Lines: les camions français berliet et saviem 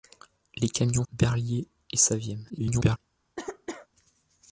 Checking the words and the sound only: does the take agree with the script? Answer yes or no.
no